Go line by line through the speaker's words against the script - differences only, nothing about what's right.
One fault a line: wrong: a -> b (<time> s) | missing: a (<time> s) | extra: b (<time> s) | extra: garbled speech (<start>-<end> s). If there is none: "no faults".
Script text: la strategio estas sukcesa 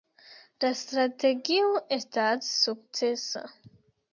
no faults